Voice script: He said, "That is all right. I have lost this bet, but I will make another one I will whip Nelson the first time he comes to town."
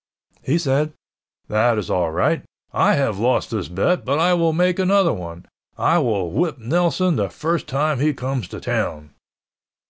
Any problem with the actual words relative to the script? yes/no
no